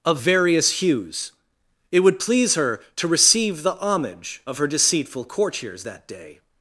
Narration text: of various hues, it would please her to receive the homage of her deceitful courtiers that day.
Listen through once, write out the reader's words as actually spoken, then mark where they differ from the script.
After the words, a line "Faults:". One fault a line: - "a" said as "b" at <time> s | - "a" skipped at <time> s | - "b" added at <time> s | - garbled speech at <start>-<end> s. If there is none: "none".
of various hues, it would please her to receive the homage of her deceitful courtiers that day.
Faults:
none